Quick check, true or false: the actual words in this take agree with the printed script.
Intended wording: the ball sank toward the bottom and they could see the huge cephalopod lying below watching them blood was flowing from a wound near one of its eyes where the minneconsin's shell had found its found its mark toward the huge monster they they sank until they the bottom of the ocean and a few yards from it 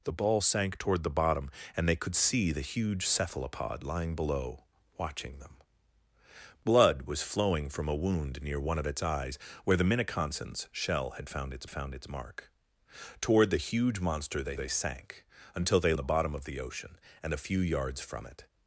true